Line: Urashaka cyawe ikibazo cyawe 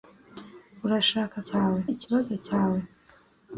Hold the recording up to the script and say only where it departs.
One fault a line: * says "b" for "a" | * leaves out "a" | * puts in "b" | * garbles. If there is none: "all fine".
all fine